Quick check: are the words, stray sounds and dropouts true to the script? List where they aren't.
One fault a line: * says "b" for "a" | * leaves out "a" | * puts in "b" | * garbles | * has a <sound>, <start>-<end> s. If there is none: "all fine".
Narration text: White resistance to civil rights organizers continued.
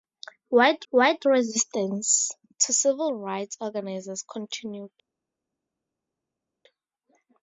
* puts in "white"